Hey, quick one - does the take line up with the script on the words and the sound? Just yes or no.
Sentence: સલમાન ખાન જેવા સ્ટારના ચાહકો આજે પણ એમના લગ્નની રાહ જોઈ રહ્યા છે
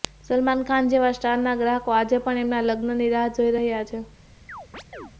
no